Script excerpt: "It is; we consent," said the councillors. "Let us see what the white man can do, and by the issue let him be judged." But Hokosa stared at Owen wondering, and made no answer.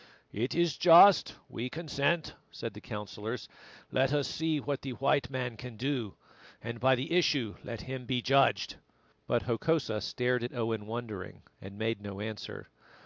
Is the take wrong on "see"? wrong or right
right